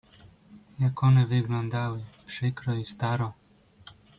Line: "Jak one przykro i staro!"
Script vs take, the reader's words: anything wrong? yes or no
yes